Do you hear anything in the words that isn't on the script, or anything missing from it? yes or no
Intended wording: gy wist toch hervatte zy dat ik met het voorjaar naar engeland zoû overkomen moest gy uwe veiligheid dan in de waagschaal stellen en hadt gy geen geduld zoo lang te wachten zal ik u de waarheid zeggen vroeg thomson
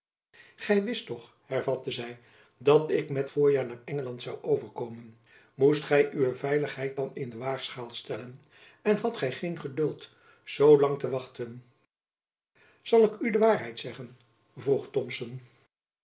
yes